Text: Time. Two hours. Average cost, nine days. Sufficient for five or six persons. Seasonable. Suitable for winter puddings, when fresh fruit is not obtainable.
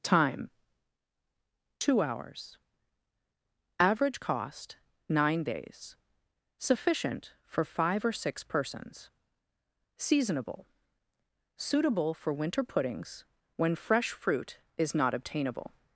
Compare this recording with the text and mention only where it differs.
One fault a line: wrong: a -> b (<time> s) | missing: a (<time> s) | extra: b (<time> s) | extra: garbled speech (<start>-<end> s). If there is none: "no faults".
no faults